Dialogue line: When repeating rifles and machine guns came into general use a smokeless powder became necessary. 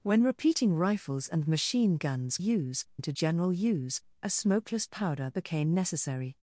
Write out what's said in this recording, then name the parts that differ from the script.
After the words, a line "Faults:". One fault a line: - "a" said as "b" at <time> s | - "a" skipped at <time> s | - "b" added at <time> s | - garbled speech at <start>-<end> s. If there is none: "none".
When repeating rifles and machine guns use into general use a smokeless powder became necessary.
Faults:
- "came" said as "use" at 2.4 s